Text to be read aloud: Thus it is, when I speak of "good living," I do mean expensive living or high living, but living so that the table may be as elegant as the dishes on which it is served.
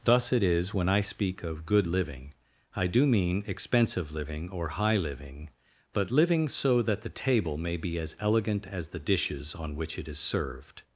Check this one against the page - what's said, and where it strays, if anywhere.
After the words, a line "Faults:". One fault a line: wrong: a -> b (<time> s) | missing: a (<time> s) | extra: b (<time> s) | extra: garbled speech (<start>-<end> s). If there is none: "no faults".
Thus it is, when I speak of "good living," I do mean expensive living or high living, but living so that the table may be as elegant as the dishes on which it is served.
Faults:
no faults